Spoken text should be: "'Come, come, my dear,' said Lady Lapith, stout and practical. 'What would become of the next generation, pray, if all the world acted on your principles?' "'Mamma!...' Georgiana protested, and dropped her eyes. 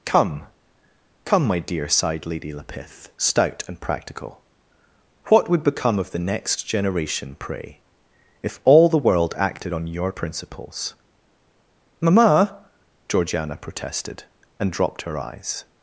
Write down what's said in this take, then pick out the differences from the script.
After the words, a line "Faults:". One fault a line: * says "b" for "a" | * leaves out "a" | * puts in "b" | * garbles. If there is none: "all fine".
"'Come, come, my dear,' sighed Lady Lapith, stout and practical. 'What would become of the next generation, pray, if all the world acted on your principles?' "'Mamma!...' Georgiana protested, and dropped her eyes.
Faults:
* says "sighed" for "said"